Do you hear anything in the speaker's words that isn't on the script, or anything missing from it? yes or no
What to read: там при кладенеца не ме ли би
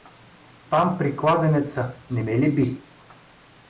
no